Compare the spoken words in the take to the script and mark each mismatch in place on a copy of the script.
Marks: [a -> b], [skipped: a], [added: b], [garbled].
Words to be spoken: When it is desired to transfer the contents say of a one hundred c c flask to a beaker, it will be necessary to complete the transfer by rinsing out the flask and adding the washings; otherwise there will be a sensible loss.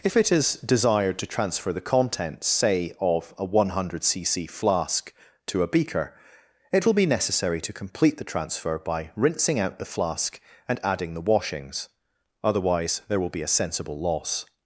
[When -> If] it is desired to transfer the contents say of a one hundred c c flask to a beaker, it will be necessary to complete the transfer by rinsing out the flask and adding the washings; otherwise there will be a sensible loss.